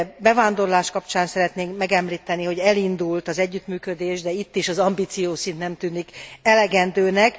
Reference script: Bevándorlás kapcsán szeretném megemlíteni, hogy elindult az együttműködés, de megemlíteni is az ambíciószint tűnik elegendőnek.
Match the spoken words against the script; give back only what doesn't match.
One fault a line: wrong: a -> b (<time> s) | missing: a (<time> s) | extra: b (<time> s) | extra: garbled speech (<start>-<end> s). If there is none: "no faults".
wrong: megemlíteni -> itt (4.3 s)
extra: nem (5.6 s)